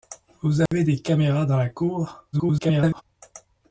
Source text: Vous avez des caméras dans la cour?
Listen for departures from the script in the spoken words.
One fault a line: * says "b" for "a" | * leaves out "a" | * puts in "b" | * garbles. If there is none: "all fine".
* garbles